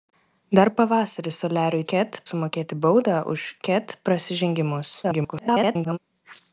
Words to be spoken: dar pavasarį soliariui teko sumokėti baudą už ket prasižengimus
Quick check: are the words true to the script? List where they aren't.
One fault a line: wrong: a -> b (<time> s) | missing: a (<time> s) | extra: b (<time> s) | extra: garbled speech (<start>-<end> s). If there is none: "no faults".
wrong: teko -> ket (1.9 s)
extra: garbled speech (5.0-6.0 s)